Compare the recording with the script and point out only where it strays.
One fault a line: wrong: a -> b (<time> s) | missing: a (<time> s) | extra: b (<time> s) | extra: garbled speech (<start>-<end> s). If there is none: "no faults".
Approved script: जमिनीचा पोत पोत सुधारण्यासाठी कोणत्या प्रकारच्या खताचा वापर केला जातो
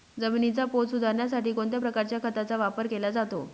missing: पोत (0.9 s)